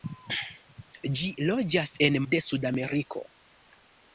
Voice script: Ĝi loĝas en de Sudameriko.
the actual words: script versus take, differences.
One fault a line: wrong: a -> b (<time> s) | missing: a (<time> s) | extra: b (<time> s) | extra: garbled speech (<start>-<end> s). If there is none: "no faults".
no faults